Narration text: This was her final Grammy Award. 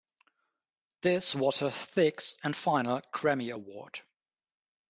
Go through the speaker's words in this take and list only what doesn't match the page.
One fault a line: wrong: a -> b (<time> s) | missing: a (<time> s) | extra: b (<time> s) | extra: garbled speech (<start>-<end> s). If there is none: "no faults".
extra: sixth and (1.7 s)